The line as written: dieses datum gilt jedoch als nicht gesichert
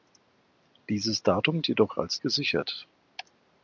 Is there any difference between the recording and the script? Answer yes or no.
yes